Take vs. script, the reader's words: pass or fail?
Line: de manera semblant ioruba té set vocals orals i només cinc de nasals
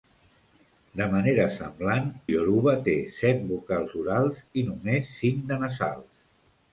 pass